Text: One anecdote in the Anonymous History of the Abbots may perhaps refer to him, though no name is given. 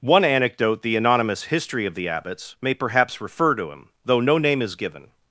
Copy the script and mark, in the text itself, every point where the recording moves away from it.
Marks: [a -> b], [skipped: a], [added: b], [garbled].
One anecdote [skipped: in] the Anonymous History of the Abbots may perhaps refer to him, though no name is given.